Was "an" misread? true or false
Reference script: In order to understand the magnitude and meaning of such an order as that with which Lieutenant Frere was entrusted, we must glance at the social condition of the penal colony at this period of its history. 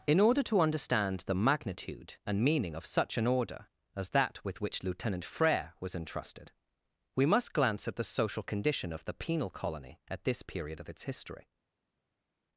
false